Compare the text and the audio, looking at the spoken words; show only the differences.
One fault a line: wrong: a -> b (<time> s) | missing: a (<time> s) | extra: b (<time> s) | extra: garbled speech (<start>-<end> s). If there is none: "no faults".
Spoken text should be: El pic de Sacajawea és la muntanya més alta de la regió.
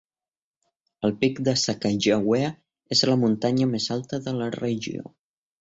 no faults